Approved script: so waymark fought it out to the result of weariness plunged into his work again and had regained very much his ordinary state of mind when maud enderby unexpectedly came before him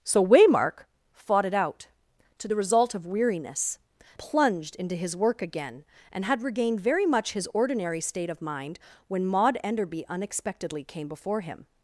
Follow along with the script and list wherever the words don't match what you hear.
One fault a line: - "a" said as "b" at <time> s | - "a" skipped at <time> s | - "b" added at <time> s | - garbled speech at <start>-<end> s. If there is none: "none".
none